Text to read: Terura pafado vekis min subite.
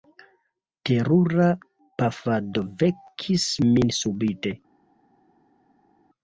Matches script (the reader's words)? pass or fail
pass